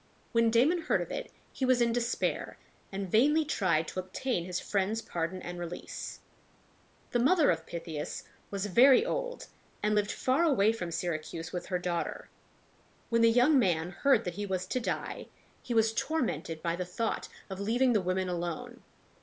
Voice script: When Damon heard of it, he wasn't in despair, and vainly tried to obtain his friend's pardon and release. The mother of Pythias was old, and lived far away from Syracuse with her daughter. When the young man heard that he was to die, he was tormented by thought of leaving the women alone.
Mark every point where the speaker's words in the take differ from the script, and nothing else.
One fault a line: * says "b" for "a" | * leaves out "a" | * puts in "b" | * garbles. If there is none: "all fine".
* says "was" for "wasn't"
* puts in "very"
* puts in "the"